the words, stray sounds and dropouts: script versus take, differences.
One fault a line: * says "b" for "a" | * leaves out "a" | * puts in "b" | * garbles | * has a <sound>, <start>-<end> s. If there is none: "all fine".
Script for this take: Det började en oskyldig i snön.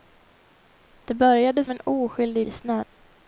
all fine